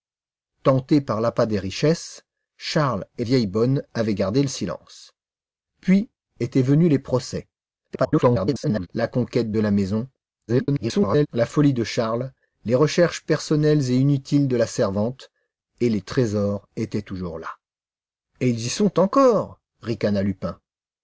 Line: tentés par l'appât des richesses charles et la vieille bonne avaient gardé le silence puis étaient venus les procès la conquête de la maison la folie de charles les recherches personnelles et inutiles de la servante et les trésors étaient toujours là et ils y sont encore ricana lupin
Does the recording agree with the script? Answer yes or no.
no